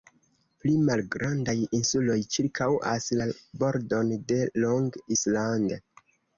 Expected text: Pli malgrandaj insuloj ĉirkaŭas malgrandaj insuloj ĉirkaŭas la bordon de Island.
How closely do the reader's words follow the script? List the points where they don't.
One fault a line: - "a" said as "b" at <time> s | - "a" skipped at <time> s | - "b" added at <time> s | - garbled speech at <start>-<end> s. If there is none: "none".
- "malgrandaj insuloj ĉirkaŭas" skipped at 3.1 s
- "Long" added at 4.7 s